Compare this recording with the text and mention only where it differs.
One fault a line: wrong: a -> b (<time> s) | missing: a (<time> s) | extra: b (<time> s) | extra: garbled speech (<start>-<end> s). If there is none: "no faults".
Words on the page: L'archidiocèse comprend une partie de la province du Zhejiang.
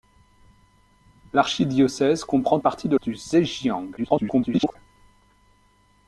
missing: une (2.6 s)
missing: la province (3.0 s)
extra: garbled speech (4.0-4.8 s)